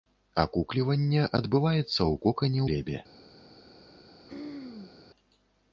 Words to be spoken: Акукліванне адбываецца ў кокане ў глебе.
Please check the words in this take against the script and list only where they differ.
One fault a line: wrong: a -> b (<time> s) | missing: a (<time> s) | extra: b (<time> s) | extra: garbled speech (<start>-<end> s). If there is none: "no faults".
missing: ў (2.6 s)